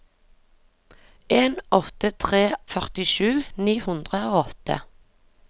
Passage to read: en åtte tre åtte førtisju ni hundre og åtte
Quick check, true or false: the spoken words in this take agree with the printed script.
false